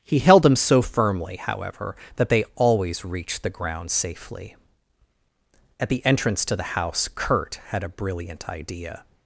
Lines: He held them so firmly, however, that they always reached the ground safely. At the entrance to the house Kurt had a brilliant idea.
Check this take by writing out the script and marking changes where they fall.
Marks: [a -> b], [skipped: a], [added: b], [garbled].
He held them so firmly, however, that they always reached the ground safely. At the entrance to the house Kurt had a brilliant idea.